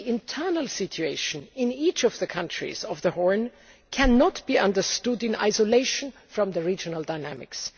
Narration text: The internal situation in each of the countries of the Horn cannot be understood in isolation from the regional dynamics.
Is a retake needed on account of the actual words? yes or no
no